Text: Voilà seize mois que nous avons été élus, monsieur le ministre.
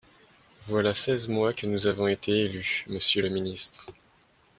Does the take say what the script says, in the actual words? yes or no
yes